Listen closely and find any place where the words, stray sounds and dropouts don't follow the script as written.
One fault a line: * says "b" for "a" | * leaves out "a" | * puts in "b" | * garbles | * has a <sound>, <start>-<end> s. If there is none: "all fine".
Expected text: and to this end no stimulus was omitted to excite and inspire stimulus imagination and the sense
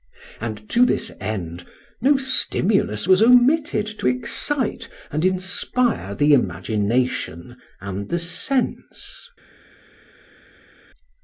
* says "the" for "stimulus"